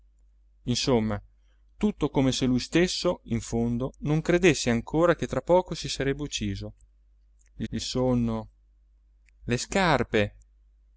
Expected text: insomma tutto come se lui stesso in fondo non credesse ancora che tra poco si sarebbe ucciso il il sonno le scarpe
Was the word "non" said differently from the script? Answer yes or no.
no